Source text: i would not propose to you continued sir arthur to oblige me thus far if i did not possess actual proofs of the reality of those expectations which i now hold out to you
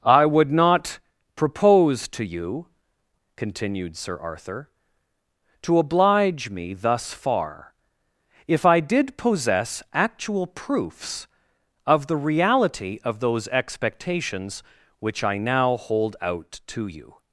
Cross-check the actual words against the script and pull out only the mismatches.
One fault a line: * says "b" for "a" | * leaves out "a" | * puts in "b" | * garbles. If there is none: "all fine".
* leaves out "not"